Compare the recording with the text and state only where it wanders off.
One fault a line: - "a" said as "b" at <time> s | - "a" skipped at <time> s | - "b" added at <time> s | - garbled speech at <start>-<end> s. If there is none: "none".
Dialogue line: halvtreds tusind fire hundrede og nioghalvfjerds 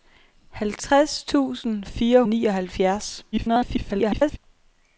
- "hundrede" skipped at 2.2 s
- garbled speech at 3.3-4.4 s